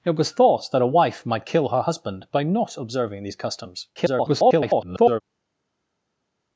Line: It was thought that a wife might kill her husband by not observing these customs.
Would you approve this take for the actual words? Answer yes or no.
no